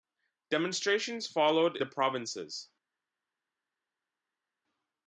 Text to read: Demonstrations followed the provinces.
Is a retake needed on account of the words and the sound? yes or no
no